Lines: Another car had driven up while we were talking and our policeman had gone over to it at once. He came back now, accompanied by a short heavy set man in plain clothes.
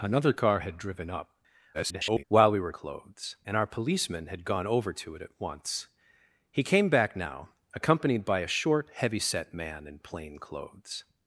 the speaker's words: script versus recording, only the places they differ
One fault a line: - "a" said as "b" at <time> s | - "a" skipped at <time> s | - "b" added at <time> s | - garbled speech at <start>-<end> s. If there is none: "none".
- garbled speech at 1.7-2.2 s
- "talking" said as "clothes" at 2.7 s